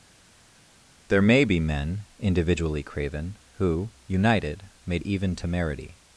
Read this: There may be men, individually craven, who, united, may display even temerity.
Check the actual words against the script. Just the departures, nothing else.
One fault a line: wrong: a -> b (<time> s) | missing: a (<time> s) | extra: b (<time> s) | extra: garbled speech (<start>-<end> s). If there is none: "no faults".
missing: display (5.0 s)